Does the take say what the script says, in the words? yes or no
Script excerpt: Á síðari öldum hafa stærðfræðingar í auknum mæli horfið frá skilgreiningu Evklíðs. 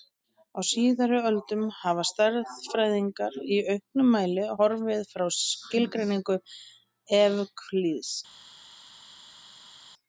yes